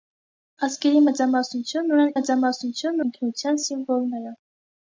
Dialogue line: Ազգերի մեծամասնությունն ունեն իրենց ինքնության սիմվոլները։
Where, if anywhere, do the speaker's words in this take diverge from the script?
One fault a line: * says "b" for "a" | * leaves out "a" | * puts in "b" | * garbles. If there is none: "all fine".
* says "մեծամասնությունն" for "իրենց"